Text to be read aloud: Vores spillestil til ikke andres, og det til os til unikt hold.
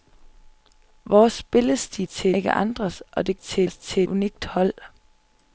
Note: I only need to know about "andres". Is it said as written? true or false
true